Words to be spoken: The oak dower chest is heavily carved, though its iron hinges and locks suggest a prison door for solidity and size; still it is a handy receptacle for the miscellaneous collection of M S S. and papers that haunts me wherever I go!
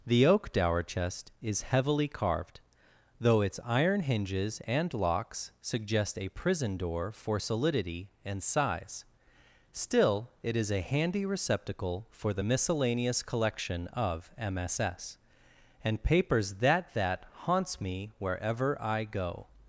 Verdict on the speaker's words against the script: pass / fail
fail